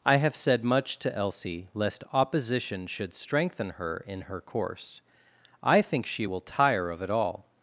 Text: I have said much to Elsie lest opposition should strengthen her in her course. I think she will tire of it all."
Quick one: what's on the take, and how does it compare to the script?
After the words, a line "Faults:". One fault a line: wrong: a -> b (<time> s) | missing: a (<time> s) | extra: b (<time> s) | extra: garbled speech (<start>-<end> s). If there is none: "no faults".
I have said much to Elsie lest opposition should strengthen her in her course. I think she will tire of it all."
Faults:
no faults